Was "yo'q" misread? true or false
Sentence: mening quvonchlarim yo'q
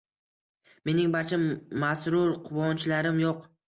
false